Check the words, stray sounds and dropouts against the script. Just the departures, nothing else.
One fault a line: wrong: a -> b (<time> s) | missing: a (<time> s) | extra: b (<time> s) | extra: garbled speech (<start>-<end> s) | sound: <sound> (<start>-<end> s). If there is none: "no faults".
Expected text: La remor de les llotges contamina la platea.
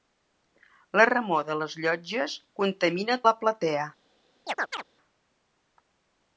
sound: chirp (4.5-4.8 s)